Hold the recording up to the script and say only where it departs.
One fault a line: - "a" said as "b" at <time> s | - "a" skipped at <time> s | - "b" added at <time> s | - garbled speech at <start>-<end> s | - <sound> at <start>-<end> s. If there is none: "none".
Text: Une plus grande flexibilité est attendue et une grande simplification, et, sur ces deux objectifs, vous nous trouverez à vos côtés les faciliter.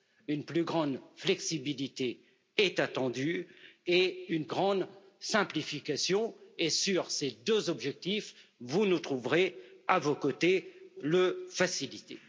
none